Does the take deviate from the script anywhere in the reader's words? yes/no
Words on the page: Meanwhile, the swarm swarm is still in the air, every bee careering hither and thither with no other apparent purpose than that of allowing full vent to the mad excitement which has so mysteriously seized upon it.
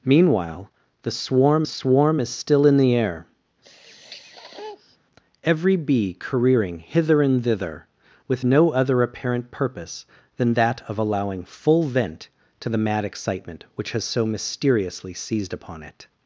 no